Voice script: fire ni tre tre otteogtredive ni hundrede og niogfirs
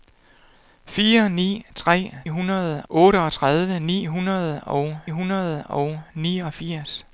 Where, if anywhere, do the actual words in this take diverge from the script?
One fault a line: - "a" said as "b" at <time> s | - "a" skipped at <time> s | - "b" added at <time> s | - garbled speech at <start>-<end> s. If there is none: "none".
- "tre" said as "hundrede" at 2.3 s
- "hundrede og" added at 5.1 s